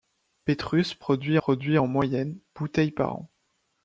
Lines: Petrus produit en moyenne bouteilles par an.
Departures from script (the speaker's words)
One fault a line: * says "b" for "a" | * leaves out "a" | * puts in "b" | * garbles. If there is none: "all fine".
* puts in "produit"